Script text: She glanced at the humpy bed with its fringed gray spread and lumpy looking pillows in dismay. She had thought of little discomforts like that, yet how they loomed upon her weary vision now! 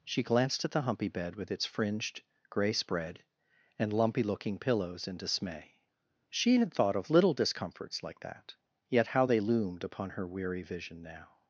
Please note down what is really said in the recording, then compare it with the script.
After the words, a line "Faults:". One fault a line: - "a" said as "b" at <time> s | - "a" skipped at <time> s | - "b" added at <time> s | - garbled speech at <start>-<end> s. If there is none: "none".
She glanced at the humpy bed with its fringed gray spread and lumpy looking pillows in dismay. She had thought of little discomforts like that, yet how they loomed upon her weary vision now!
Faults:
none